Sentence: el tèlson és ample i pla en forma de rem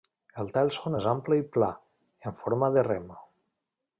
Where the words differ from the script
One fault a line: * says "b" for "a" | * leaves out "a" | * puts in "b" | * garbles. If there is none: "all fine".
all fine